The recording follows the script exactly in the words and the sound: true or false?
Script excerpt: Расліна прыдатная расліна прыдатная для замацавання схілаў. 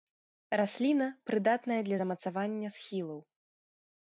false